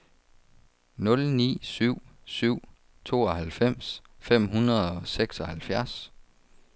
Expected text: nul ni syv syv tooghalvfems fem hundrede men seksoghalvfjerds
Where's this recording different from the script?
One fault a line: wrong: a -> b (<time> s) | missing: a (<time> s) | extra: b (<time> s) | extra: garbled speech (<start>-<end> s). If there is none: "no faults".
wrong: men -> og (4.9 s)